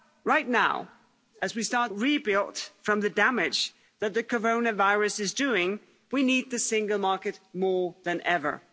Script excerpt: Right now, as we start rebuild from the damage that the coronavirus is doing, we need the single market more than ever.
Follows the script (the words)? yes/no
yes